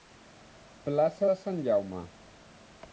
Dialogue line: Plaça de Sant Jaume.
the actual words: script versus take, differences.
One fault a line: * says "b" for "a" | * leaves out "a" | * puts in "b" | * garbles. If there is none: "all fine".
all fine